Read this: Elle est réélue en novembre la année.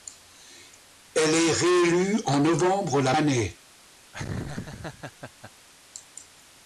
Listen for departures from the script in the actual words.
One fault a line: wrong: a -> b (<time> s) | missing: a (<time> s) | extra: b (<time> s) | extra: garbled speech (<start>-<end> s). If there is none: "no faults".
no faults